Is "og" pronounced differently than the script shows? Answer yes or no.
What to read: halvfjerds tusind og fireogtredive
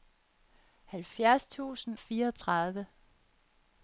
yes